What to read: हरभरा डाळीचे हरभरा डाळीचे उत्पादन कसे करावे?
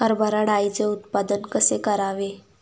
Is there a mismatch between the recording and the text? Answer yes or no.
yes